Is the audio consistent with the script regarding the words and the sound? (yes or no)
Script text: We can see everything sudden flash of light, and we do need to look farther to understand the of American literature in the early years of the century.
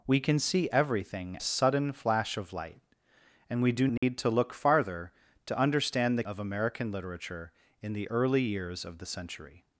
no